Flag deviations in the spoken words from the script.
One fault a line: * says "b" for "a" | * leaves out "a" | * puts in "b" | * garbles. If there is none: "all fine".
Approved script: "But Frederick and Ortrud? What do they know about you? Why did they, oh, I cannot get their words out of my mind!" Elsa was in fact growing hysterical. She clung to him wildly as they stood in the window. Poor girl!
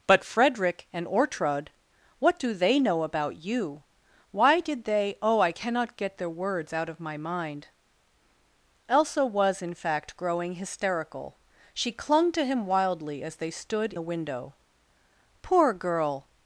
* leaves out "in"